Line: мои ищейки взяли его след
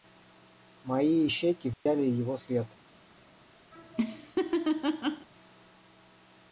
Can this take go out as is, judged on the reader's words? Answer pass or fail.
pass